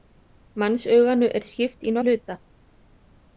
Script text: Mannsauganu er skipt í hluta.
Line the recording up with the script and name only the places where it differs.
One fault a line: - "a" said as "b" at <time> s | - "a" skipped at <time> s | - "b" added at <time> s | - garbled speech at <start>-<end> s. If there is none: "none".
none